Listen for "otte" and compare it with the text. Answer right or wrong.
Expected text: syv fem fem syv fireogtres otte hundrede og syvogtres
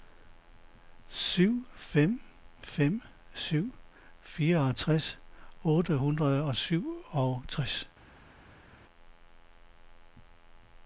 right